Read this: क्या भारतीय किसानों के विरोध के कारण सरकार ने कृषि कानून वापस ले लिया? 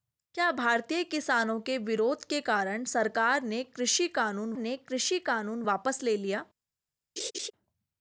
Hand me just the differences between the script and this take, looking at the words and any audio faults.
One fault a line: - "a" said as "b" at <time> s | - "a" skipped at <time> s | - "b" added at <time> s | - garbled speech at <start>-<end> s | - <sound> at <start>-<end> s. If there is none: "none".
- "ने कृषि कानून" added at 4.6 s
- laugh at 7.2-7.5 s